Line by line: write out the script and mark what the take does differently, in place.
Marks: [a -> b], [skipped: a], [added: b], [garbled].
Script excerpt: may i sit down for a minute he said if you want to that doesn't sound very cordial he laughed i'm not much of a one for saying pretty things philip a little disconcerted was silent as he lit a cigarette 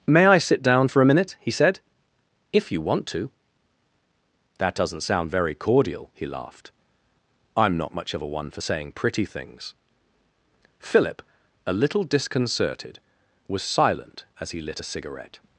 may i sit down for a minute he said if you want to that doesn't sound very cordial he laughed i'm not much of a one for saying pretty things philip a little disconcerted was silent as he lit a cigarette